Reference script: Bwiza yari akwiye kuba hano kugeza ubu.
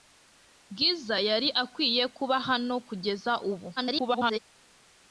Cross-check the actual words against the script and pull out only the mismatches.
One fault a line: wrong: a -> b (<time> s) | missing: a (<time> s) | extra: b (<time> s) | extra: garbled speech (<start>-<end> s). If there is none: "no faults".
extra: garbled speech (3.8-4.4 s)